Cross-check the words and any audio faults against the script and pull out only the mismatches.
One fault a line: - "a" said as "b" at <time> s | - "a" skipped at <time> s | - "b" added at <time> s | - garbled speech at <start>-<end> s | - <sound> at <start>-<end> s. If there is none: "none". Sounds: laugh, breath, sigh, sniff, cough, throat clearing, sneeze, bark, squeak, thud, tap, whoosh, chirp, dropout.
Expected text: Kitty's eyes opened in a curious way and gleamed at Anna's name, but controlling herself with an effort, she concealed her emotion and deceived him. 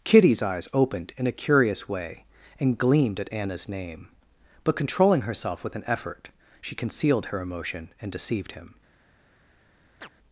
- chirp at 10.0-10.1 s